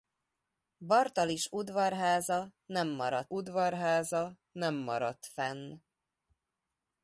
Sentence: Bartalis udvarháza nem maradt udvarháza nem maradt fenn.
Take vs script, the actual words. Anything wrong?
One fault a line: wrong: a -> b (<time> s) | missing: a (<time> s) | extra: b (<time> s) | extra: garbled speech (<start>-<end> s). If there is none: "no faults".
no faults